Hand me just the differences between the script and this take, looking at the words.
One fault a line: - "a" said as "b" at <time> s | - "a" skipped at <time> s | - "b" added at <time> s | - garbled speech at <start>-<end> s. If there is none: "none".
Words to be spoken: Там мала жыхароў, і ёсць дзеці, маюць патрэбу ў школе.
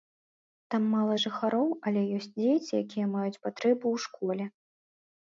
- "і" said as "але" at 1.9 s
- "якія" added at 2.8 s